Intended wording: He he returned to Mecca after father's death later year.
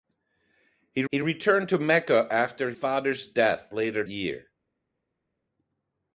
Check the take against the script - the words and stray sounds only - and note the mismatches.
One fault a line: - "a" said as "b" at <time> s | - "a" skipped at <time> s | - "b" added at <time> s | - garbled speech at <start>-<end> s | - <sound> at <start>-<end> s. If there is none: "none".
none